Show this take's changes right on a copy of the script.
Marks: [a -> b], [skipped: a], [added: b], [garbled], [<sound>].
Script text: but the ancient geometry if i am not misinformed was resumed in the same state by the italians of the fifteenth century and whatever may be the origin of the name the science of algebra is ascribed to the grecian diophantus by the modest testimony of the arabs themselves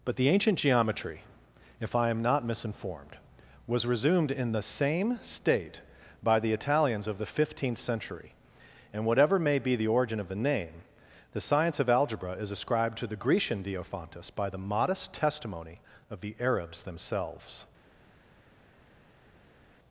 but the ancient geometry if i am not misinformed was resumed in the same state by the italians of the fifteenth century and whatever may be the origin of the name the science of algebra is ascribed to the grecian diophantus by the modest testimony of the arabs themselves